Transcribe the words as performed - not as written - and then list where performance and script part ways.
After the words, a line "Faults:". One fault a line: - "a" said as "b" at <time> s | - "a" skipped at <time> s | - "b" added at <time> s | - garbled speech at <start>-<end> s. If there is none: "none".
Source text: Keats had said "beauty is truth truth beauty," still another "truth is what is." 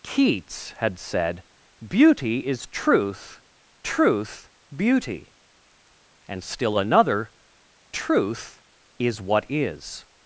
Keats had said "beauty is truth truth beauty," and still another "truth is what is."
Faults:
- "and" added at 6.3 s